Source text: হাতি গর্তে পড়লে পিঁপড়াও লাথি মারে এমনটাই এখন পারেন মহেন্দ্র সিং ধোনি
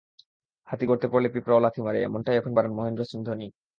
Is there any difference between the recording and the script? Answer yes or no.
no